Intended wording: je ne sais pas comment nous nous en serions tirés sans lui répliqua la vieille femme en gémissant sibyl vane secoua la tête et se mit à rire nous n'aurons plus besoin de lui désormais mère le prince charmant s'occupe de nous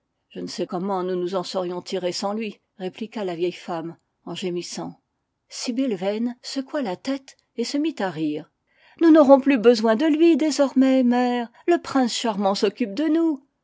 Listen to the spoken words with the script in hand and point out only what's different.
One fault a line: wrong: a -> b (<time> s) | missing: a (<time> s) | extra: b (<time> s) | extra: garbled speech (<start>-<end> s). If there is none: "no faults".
missing: pas (0.7 s)